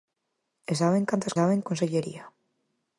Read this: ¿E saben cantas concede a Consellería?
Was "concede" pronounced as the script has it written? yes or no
no